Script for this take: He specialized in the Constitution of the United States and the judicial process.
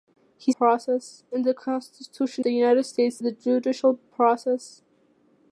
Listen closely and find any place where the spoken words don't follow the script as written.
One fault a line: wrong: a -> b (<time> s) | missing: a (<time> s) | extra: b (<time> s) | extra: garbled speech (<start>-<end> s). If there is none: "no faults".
wrong: specialized -> process (0.6 s)
missing: of (2.4 s)
missing: and (3.2 s)